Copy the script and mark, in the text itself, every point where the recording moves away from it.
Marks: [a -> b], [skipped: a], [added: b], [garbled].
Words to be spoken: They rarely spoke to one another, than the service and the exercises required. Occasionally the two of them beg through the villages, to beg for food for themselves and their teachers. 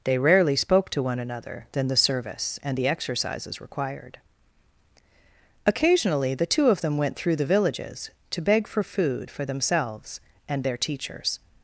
They rarely spoke to one another, than the service and the exercises required. Occasionally the two of them [beg -> went] through the villages, to beg for food for themselves and their teachers.